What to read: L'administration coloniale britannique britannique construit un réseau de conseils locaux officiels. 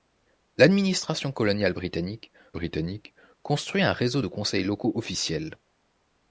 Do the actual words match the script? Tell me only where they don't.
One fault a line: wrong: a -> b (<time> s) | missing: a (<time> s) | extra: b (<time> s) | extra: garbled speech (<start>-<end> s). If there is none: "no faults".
no faults